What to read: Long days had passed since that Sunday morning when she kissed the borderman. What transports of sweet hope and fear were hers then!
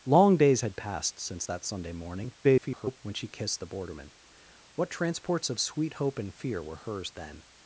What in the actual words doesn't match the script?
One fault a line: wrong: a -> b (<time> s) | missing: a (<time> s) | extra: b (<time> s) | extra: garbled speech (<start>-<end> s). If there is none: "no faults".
extra: garbled speech (2.4-3.0 s)